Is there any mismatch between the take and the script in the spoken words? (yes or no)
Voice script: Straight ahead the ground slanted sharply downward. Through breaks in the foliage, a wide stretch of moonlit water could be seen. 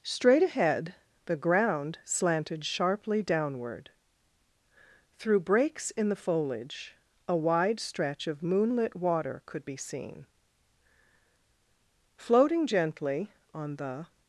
yes